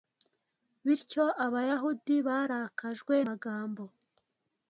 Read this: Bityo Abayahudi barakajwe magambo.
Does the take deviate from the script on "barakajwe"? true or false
false